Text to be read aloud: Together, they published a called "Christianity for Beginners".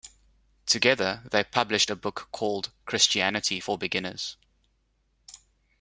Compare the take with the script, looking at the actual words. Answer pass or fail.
fail